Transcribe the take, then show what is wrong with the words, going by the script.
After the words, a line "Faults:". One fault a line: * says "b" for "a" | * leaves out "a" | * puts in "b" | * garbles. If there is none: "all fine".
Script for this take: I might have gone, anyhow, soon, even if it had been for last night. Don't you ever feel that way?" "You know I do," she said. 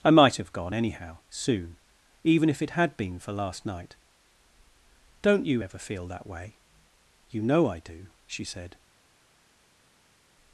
I might have gone, anyhow, soon, even if it had been for last night. Don't you ever feel that way?" "You know I do," she said.
Faults:
all fine